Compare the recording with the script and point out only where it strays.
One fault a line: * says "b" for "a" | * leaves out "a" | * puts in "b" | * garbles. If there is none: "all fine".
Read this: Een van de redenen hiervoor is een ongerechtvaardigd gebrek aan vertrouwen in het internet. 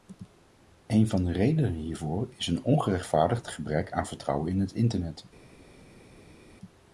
all fine